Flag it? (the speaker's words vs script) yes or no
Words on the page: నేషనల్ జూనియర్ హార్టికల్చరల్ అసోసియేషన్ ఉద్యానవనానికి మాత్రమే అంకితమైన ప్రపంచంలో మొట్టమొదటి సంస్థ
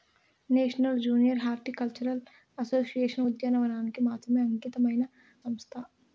yes